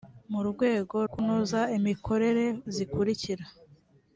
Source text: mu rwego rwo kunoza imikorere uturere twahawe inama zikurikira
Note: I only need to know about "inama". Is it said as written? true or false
false